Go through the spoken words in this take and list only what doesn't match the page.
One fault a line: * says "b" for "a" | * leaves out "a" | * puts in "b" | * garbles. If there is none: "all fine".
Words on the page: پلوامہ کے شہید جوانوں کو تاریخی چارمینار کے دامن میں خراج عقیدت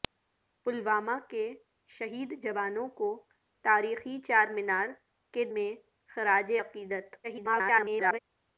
* leaves out "دامن"
* garbles